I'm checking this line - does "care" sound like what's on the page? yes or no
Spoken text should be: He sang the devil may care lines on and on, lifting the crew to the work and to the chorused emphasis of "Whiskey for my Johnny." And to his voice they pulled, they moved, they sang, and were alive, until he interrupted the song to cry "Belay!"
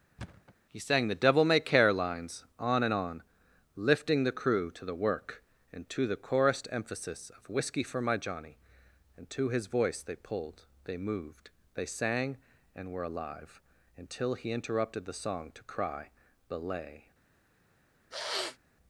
yes